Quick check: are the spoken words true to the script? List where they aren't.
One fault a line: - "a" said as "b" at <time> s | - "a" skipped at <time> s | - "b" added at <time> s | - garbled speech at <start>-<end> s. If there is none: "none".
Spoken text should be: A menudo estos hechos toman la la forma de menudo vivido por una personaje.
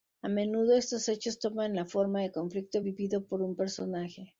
- "la" skipped at 1.9 s
- "menudo" said as "conflicto" at 2.3 s
- "una" said as "un" at 3.4 s